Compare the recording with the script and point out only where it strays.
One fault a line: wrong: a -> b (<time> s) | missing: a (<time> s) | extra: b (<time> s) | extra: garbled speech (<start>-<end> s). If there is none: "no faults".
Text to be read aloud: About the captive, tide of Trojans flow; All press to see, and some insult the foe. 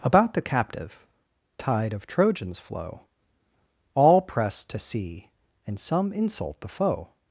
no faults